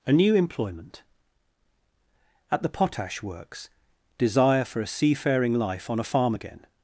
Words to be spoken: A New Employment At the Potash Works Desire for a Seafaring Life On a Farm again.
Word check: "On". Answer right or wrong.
right